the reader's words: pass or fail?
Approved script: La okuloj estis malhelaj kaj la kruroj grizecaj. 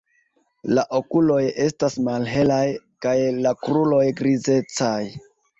fail